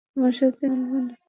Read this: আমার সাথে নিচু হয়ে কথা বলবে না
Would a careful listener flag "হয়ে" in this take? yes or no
yes